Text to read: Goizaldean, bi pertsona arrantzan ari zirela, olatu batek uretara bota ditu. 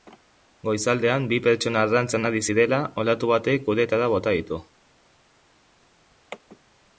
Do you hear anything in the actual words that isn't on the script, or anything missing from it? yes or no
no